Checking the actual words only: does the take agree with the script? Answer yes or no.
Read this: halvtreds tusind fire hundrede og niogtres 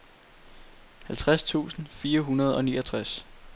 yes